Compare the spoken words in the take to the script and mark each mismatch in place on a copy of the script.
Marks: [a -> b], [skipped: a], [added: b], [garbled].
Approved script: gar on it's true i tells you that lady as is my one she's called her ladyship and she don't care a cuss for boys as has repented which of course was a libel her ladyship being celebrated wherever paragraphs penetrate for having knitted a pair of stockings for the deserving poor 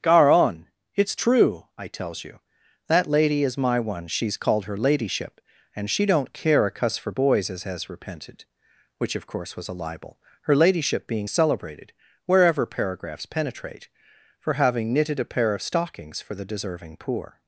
gar on it's true i tells you that lady [skipped: as] is my one she's called her ladyship and she don't care a cuss for boys as has repented which of course was a libel her ladyship being celebrated wherever paragraphs penetrate for having knitted a pair of stockings for the deserving poor